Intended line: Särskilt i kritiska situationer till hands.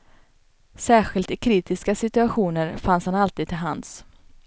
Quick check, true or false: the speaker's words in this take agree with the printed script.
false